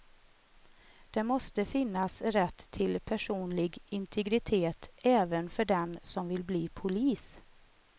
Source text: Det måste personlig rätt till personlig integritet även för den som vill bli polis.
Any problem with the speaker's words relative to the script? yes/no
yes